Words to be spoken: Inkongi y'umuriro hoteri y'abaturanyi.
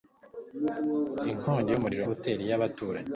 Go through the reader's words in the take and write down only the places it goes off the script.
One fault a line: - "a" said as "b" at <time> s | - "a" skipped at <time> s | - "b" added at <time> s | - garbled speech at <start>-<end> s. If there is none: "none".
none